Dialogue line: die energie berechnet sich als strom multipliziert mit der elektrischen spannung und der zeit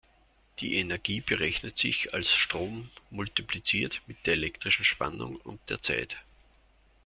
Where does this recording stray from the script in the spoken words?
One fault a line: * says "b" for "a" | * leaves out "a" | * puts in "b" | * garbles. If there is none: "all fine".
all fine